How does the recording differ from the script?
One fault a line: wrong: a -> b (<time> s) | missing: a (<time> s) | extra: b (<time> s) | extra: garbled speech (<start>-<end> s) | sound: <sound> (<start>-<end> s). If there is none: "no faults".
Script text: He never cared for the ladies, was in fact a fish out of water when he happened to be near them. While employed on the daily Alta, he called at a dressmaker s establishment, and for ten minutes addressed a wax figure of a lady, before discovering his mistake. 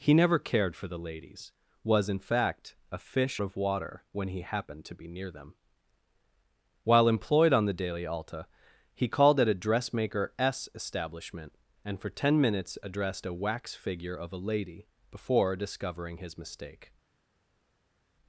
missing: out (3.4 s)